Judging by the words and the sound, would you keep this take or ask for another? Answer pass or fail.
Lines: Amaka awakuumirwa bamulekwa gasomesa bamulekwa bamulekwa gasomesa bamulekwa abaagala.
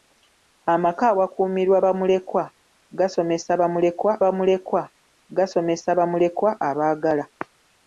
pass